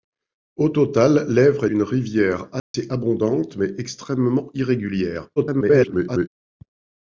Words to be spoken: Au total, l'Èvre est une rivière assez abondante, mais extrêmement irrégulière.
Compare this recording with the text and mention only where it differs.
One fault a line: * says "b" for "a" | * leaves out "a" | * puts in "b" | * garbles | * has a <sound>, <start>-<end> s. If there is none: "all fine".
* leaves out "est"
* has a dropout, 2.6-2.7 s
* garbles